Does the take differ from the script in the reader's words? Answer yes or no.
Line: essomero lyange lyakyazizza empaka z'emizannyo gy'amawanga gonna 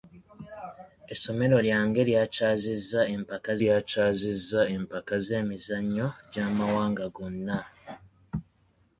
yes